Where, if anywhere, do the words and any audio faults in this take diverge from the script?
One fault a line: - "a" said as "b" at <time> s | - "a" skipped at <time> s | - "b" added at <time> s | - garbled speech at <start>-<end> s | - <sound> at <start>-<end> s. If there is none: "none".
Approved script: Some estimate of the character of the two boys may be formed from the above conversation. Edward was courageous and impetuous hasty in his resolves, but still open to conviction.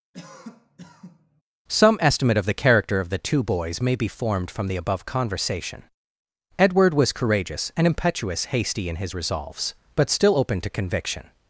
- cough at 0.1-1.4 s